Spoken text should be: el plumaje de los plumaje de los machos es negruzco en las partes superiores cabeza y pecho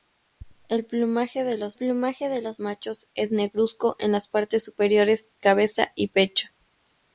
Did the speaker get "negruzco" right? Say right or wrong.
right